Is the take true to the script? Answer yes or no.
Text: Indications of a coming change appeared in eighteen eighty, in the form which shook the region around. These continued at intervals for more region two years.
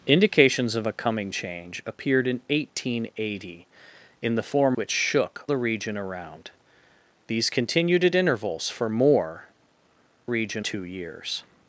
yes